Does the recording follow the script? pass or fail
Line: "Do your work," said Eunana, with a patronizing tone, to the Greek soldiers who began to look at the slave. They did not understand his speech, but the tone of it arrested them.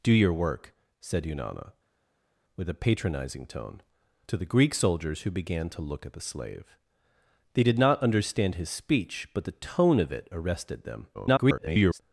fail